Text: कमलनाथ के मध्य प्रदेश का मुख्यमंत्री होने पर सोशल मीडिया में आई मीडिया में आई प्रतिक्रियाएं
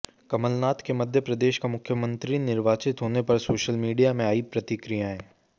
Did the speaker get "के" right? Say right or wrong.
right